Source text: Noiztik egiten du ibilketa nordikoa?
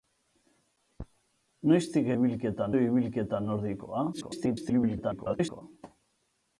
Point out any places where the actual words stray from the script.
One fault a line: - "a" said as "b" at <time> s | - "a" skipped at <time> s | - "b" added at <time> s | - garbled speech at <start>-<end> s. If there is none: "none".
- "egiten" said as "ibilketa" at 2.1 s
- garbled speech at 4.1-5.6 s